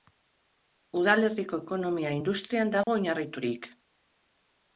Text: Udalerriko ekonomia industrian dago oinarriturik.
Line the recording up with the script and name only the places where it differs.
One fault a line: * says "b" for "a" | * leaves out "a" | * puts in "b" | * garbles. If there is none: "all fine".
all fine